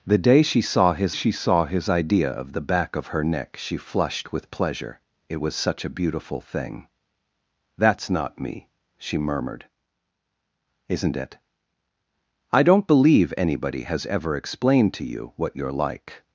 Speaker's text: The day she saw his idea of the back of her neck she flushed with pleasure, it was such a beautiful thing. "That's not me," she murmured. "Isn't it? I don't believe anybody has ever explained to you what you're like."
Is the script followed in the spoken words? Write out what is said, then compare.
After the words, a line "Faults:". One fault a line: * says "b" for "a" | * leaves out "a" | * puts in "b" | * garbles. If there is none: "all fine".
The day she saw his she saw his idea of the back of her neck she flushed with pleasure, it was such a beautiful thing. "That's not me," she murmured. "Isn't it? I don't believe anybody has ever explained to you what you're like."
Faults:
* puts in "she saw his"